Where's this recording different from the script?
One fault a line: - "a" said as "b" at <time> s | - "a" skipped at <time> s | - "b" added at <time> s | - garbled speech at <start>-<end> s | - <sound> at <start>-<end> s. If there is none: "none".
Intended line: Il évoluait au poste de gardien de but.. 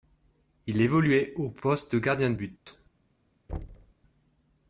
- dropout at 2.6-2.7 s
- thud at 3.5-3.9 s